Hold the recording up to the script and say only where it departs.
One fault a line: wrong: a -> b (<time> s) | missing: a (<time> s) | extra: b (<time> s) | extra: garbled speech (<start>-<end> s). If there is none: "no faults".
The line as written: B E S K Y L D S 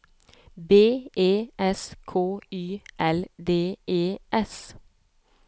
extra: E (3.9 s)